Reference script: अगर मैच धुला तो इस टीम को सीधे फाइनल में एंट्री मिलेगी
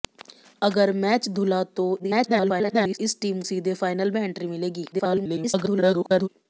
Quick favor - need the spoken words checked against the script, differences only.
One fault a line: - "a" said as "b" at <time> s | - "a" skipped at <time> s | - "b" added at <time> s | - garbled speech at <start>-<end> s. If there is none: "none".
- garbled speech at 2.0-3.0 s
- "को" skipped at 3.4 s
- garbled speech at 4.9-6.3 s